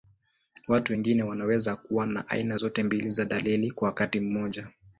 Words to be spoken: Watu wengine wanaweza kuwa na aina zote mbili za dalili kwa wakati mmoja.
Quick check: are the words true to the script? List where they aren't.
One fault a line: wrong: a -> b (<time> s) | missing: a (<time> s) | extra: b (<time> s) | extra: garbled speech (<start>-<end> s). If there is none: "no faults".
no faults